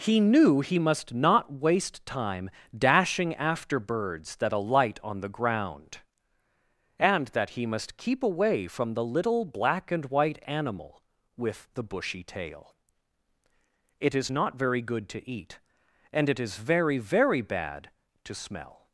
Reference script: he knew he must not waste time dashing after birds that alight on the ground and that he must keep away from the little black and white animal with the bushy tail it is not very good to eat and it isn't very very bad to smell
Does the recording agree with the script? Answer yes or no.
no